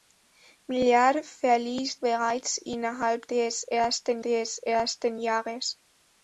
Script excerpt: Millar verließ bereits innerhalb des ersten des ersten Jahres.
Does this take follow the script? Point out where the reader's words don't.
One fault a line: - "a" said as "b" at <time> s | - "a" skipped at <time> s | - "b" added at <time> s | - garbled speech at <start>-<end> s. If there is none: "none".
none